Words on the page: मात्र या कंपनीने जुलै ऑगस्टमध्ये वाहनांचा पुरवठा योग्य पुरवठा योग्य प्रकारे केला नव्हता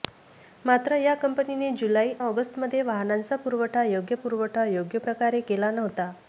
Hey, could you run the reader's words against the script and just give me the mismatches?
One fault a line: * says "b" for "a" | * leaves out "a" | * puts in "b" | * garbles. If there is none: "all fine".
all fine